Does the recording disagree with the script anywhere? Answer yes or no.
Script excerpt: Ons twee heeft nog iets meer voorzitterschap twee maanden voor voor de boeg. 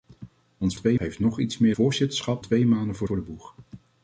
no